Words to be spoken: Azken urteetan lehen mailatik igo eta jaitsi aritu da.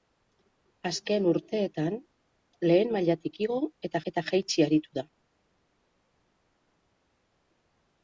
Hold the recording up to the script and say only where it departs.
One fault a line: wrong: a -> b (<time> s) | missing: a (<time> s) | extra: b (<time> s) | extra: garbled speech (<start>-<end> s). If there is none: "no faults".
extra: eta (4.1 s)